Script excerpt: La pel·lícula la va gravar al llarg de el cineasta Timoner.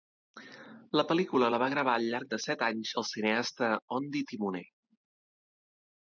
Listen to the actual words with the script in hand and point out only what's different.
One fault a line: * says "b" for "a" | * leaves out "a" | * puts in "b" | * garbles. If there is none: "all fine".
* puts in "set anys"
* puts in "Ondi"